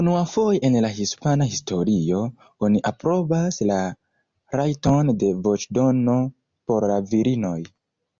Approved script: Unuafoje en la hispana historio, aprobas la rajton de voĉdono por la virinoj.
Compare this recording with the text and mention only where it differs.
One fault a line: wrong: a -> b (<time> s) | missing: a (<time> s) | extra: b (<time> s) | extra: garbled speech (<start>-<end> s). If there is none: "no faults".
extra: oni (2.7 s)